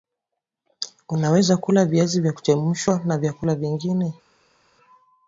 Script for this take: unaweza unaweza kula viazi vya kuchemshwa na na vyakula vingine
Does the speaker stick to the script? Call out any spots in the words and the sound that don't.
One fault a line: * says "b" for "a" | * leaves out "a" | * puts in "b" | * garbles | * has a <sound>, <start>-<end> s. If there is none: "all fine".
* leaves out "unaweza"
* leaves out "na"